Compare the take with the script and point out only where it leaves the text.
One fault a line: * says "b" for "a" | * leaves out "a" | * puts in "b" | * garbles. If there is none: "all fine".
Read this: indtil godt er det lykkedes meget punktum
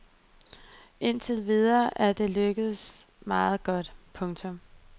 * says "videre" for "godt"
* puts in "godt"